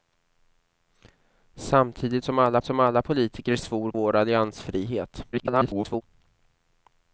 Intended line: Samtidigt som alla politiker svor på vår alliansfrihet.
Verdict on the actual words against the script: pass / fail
fail